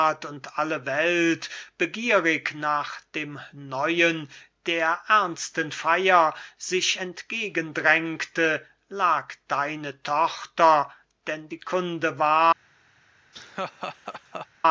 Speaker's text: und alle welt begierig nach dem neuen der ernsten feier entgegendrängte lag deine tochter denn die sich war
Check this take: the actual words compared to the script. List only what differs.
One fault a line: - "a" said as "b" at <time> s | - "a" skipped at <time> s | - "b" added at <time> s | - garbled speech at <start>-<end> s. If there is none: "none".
- "sich" added at 6.6 s
- "sich" said as "kunde" at 11.6 s